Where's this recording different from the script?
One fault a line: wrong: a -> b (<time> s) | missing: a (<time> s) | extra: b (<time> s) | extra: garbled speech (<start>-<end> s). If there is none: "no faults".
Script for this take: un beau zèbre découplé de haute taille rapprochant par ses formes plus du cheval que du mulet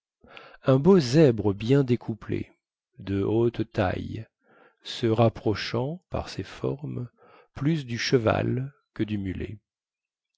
extra: bien (1.5 s)
extra: se (4.8 s)